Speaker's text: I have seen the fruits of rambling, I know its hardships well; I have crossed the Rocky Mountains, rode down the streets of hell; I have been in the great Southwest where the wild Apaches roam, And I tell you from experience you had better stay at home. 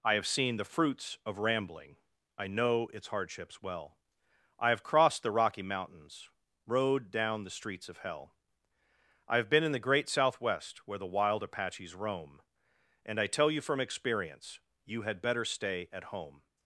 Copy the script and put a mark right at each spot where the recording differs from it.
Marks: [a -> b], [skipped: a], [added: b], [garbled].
I have seen the fruits of rambling, I know its hardships well; I have crossed the Rocky Mountains, rode down the streets of hell; I have been in the great Southwest where the wild Apaches roam, And I tell you from experience you had better stay at home.